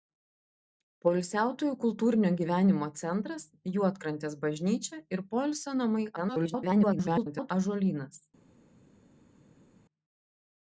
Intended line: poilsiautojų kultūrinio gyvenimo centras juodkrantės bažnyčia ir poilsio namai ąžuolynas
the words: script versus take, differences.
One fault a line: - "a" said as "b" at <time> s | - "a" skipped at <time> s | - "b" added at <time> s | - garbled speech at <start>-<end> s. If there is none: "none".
- garbled speech at 6.2-7.5 s